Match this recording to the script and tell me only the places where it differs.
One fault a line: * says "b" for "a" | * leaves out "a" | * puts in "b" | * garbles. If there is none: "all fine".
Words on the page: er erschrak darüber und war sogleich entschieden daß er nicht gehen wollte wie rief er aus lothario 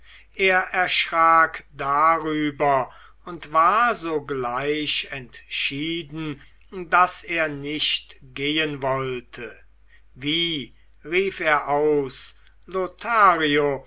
all fine